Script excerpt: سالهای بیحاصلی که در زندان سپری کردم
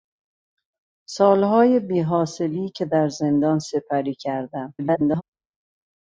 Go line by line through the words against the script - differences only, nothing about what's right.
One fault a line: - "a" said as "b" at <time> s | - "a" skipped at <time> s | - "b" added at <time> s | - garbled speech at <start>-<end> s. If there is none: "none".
- garbled speech at 4.8-5.2 s